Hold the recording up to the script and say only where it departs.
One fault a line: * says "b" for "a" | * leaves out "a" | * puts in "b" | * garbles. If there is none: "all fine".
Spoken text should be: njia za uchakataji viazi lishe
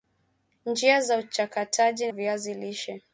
all fine